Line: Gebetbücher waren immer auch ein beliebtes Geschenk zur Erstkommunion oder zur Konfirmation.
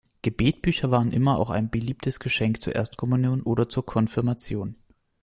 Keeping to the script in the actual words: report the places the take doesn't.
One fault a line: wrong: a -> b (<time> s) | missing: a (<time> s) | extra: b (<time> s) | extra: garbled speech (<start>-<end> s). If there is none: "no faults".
no faults